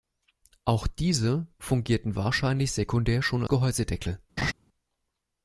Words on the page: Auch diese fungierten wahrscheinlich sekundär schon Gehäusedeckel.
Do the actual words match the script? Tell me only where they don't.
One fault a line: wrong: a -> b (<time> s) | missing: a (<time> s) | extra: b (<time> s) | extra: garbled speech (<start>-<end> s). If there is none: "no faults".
no faults